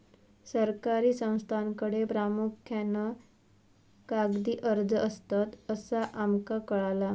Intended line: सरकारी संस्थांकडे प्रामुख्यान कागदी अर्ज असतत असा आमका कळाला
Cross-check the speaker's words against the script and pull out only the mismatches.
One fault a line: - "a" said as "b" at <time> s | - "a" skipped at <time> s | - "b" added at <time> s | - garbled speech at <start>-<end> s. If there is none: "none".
none